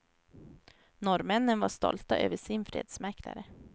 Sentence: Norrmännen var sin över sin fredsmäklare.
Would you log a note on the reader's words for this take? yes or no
yes